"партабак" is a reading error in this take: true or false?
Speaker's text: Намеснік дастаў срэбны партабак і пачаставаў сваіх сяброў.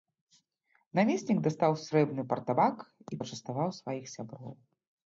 false